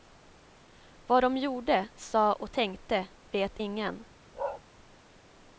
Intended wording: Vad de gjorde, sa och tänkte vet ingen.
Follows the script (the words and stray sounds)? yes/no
no